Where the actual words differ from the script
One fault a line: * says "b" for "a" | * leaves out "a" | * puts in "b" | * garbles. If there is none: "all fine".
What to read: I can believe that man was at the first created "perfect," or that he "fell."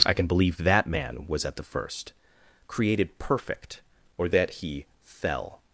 all fine